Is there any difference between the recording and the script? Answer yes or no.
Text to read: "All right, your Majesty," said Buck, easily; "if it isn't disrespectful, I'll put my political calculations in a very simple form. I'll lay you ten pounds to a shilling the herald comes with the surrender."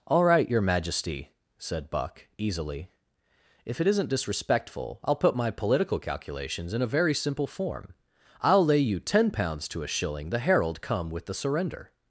yes